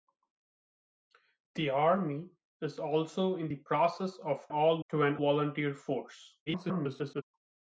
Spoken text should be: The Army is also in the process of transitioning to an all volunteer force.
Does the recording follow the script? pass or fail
fail